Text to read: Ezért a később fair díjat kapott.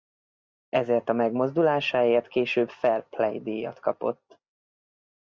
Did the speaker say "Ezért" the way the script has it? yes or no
yes